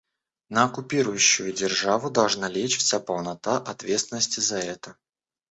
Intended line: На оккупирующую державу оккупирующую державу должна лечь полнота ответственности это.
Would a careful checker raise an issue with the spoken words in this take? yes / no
yes